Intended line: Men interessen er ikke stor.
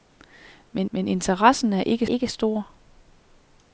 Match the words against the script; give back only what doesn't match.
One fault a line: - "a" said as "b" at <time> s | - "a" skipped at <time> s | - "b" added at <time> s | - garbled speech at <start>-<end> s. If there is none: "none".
- "men" added at 0.9 s
- "ikke" added at 2.0 s